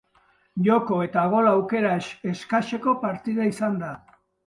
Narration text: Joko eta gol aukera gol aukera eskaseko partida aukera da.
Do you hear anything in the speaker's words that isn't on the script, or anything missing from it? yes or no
yes